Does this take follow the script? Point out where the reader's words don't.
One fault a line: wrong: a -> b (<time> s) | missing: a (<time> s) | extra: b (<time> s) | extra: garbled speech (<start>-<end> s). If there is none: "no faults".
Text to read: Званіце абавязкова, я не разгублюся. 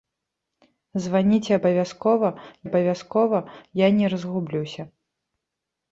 extra: абавязкова (2.7 s)